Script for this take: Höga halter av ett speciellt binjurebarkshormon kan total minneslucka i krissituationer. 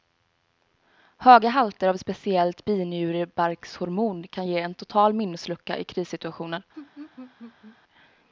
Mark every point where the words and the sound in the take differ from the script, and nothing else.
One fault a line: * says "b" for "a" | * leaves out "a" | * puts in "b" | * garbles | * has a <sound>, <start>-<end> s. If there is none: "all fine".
* puts in "ge en"
* has a laugh, 6.7-7.8 s